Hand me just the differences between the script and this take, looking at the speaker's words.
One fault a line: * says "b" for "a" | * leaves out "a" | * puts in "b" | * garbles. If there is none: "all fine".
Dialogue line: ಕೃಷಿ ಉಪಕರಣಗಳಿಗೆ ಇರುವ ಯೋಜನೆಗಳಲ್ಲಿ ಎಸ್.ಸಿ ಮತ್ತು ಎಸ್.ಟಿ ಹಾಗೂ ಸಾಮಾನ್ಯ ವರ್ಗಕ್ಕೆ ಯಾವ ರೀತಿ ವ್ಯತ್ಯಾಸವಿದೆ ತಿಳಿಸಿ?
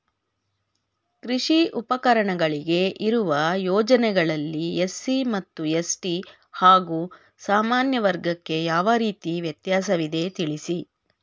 all fine